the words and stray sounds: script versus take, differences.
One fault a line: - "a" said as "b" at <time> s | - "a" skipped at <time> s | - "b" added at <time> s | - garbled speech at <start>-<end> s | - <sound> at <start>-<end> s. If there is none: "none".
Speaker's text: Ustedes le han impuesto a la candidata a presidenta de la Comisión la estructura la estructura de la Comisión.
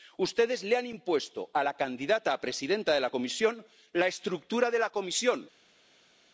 - "la estructura" skipped at 4.7 s